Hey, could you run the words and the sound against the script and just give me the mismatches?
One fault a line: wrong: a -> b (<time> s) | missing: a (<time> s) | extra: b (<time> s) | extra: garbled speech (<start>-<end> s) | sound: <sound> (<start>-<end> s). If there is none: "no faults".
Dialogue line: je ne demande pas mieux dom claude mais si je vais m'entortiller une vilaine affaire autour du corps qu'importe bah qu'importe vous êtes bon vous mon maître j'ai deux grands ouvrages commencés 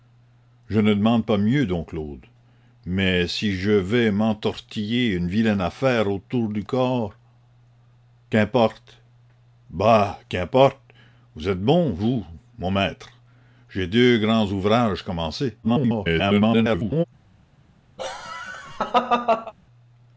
extra: garbled speech (15.6-17.0 s)
sound: laugh (18.0-19.5 s)